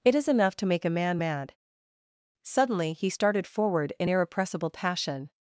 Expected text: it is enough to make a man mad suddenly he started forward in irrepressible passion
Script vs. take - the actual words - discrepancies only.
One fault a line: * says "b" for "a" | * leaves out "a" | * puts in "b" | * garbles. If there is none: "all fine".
all fine